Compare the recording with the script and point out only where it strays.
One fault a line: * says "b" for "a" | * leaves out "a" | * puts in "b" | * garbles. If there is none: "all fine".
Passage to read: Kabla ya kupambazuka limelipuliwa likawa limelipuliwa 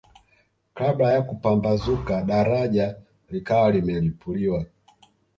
* says "daraja" for "limelipuliwa"